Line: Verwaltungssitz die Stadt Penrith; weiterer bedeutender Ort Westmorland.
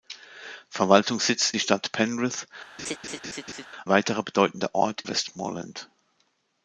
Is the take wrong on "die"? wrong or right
right